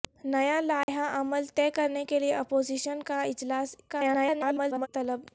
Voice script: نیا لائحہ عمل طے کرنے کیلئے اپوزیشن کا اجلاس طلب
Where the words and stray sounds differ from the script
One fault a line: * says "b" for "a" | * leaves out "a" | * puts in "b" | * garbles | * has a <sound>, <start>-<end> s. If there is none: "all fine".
* has a dropout, 0.8-0.9 s
* garbles